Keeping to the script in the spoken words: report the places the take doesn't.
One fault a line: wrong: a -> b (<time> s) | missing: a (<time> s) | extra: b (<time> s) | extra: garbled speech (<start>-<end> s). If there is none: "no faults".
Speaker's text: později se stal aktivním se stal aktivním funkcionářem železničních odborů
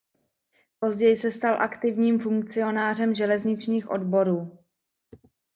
missing: se stal aktivním (2.2 s)